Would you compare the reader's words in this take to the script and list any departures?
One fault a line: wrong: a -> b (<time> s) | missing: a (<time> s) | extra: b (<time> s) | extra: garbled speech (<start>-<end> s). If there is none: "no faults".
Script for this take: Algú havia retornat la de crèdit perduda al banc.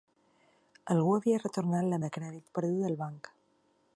no faults